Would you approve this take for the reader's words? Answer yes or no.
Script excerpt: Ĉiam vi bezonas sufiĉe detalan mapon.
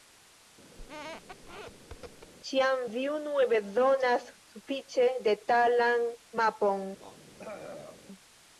no